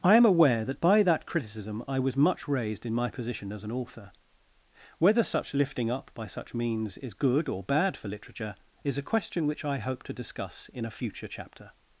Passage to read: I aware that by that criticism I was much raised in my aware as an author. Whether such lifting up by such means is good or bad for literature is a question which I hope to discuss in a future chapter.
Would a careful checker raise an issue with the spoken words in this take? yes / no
yes